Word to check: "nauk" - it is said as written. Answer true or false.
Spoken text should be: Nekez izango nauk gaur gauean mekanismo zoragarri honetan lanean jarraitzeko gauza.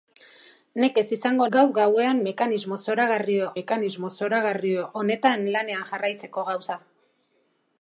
false